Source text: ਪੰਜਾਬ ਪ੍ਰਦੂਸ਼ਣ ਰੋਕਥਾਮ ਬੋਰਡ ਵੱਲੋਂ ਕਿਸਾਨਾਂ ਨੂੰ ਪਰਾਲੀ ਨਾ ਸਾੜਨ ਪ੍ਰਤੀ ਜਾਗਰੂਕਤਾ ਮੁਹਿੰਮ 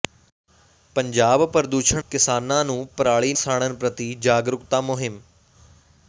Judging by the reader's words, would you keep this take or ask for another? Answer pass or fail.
fail